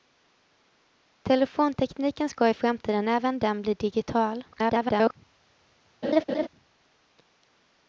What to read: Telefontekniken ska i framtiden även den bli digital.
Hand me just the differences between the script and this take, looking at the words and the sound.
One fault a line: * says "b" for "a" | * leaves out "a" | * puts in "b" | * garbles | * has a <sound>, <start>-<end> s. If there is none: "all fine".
* garbles
* has a laugh, 6.0-6.5 s